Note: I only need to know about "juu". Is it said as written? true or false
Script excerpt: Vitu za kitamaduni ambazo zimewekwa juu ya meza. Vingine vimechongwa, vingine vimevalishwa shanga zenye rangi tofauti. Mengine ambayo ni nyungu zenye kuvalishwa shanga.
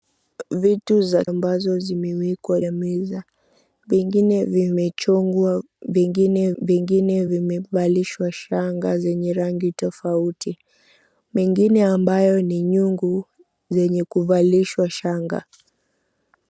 false